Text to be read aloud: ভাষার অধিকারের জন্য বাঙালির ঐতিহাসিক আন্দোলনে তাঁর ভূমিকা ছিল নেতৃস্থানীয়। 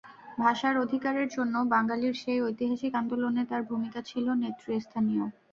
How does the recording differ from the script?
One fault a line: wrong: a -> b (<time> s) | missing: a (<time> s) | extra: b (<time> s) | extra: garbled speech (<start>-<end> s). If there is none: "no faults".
extra: সেই (2.1 s)